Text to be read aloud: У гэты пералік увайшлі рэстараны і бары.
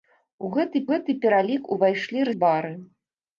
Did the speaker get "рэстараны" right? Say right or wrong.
wrong